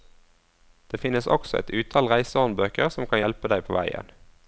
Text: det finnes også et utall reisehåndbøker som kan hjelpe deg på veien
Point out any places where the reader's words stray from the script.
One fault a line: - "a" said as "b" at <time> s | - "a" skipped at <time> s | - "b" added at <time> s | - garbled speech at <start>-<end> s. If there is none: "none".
none